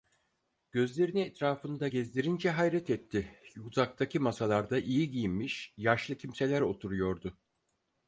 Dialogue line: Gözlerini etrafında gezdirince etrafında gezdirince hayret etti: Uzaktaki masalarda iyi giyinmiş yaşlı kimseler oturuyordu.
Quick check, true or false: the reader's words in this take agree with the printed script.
false